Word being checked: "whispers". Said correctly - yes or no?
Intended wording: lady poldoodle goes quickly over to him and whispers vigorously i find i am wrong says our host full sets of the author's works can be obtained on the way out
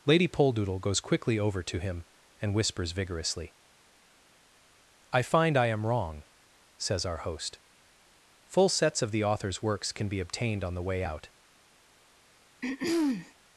yes